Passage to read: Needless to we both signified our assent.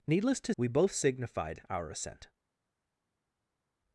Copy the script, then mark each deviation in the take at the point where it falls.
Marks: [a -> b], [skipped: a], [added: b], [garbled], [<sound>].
Needless to we both signified our assent.